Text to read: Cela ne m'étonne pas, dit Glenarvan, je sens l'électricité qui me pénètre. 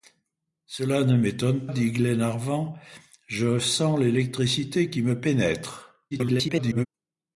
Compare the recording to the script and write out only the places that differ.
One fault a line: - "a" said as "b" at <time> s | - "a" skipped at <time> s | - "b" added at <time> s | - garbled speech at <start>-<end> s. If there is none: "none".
- "pas" skipped at 1.7 s
- garbled speech at 6.1-6.9 s